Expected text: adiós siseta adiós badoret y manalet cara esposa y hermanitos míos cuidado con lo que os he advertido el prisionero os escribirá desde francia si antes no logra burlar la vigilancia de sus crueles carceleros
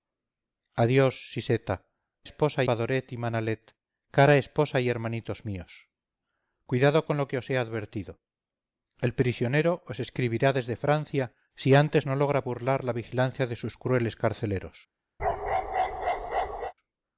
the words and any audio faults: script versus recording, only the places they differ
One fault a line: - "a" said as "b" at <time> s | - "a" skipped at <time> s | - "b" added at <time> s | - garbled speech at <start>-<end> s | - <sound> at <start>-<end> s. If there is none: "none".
- "adiós" said as "esposa" at 2.3 s
- bark at 15.2-16.7 s